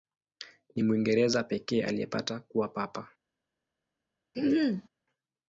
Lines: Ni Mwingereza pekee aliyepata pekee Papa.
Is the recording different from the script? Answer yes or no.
yes